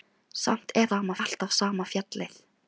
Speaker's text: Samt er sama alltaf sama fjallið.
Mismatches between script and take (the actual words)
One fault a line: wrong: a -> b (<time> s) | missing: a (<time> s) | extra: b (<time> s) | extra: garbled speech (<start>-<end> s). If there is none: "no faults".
no faults